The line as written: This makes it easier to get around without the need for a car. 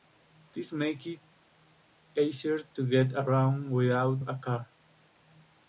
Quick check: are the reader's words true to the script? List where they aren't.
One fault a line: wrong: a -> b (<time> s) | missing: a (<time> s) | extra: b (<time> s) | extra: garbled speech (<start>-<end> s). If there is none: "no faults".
missing: the need for (4.2 s)